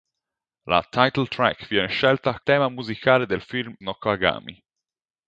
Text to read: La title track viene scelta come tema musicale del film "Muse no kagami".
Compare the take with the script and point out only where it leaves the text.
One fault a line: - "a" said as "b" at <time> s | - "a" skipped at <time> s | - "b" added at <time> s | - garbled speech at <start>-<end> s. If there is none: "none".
- "come" skipped at 2.4 s
- "Muse" skipped at 3.7 s